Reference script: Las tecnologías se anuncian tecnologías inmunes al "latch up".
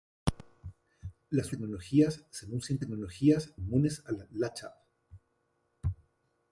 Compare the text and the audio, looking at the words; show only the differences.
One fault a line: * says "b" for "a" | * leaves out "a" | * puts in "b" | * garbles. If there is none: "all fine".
all fine